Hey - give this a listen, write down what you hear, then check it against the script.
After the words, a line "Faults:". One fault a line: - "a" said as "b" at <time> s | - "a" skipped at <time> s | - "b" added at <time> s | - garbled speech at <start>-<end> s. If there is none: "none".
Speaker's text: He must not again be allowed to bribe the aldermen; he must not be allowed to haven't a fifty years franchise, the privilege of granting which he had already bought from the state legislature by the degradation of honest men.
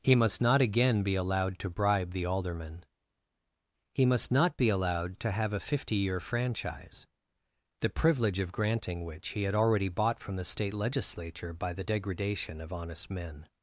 He must not again be allowed to bribe the aldermen; he must not be allowed to have a fifty year franchise, the privilege of granting which he had already bought from the state legislature by the degradation of honest men.
Faults:
- "haven't" said as "have" at 5.3 s
- "years" said as "year" at 6.0 s